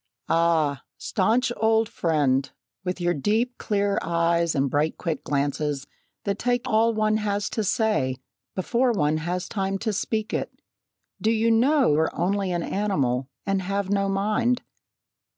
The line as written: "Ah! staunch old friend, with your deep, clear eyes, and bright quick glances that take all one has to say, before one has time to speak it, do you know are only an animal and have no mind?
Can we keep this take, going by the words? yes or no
yes